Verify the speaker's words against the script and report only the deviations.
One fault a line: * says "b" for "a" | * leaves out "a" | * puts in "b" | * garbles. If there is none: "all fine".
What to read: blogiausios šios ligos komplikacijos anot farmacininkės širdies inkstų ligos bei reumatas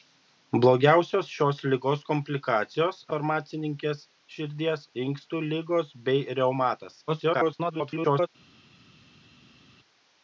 * leaves out "anot"
* garbles